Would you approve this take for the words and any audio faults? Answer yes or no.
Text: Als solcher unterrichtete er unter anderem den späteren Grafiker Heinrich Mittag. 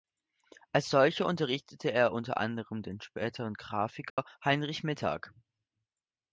no